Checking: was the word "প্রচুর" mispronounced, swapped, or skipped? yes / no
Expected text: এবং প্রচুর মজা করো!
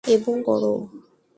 yes